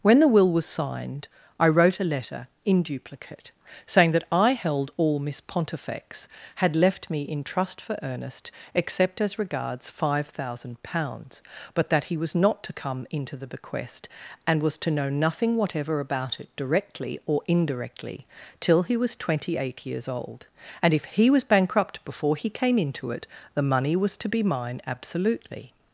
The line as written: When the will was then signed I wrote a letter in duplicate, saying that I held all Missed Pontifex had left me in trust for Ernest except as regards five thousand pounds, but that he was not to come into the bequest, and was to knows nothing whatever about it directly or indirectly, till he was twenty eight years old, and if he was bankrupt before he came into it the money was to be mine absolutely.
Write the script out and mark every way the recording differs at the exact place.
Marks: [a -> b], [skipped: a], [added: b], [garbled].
When the will was [skipped: then] signed I wrote a letter in duplicate, saying that I held all [Missed -> Miss] Pontifex had left me in trust for Ernest except as regards five thousand pounds, but that he was not to come into the bequest, and was to [knows -> know] nothing whatever about it directly or indirectly, till he was twenty eight years old, and if he was bankrupt before he came into it the money was to be mine absolutely.